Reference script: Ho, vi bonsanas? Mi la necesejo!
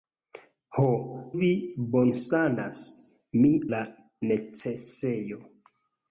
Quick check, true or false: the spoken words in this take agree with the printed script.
true